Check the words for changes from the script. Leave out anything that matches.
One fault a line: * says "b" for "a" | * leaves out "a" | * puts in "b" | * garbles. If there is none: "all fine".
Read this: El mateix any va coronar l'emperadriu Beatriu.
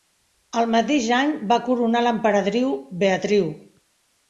all fine